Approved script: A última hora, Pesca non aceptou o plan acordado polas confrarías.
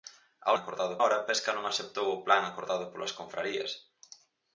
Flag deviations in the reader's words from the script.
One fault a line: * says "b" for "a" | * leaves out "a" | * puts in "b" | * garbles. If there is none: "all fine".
* says "acordado" for "última"